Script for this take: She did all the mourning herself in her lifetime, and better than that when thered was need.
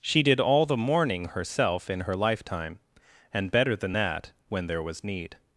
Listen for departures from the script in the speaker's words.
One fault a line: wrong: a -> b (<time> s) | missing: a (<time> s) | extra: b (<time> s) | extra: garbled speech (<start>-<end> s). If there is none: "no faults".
wrong: thered -> there (4.7 s)